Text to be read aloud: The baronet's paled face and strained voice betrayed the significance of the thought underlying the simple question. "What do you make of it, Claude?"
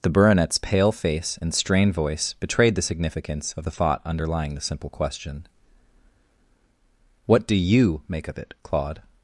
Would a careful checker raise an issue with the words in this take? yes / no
yes